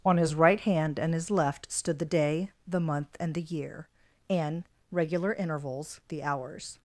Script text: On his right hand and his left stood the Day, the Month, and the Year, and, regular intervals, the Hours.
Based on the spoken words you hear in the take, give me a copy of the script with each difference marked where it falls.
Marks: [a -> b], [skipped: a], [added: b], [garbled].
On his right hand and his left stood the Day, the Month, and the Year, and, regular intervals, the Hours.